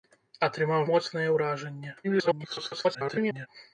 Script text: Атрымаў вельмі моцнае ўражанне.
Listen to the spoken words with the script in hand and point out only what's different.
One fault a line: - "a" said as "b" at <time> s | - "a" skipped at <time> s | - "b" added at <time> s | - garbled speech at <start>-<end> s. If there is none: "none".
- "вельмі" skipped at 0.9 s
- garbled speech at 2.0-3.5 s